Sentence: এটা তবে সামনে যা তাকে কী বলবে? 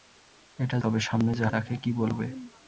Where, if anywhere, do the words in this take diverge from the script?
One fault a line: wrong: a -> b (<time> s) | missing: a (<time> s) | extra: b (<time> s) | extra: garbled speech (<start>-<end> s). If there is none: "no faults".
no faults